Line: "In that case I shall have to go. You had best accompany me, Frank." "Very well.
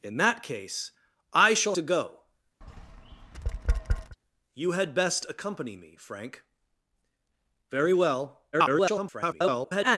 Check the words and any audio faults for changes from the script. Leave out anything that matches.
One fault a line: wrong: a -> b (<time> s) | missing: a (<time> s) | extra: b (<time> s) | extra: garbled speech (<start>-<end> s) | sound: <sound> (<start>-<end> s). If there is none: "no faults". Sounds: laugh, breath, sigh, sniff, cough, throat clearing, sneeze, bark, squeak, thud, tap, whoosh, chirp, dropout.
missing: have (1.8 s)
sound: tap (2.6-4.2 s)
extra: garbled speech (8.5-10.0 s)